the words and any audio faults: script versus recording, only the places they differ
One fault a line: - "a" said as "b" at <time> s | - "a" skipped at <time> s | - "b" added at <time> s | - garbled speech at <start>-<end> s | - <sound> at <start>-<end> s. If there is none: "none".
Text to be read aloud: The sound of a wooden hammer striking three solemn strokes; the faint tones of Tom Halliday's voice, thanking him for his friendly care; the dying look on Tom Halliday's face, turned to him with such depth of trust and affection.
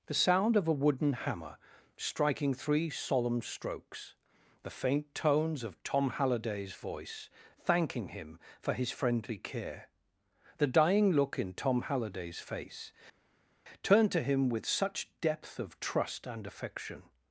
- "on" said as "in" at 11.4 s